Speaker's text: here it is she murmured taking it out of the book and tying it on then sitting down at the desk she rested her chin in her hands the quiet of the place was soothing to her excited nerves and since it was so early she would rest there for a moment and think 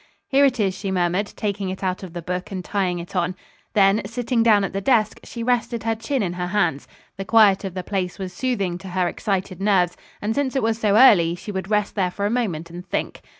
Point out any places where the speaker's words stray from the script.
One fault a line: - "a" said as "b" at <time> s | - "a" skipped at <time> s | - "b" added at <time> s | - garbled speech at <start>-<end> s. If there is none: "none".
none